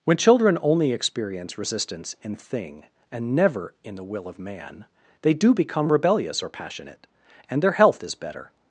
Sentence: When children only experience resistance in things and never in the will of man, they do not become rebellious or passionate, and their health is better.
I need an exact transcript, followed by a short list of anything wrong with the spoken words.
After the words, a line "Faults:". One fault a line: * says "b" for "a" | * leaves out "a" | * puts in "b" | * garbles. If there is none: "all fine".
When children only experience resistance in thing and never in the will of man, they do become rebellious or passionate, and their health is better.
Faults:
* says "thing" for "things"
* leaves out "not"